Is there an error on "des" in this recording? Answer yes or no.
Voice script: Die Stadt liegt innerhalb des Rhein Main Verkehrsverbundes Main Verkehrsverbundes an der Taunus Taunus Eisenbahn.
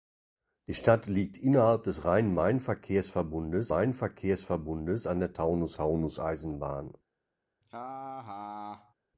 no